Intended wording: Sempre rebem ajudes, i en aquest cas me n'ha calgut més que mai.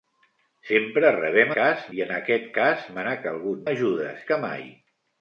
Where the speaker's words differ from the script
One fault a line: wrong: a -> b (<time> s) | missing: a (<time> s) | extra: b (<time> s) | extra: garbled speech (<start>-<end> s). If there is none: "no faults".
wrong: ajudes -> cas (1.6 s)
wrong: més -> ajudes (3.7 s)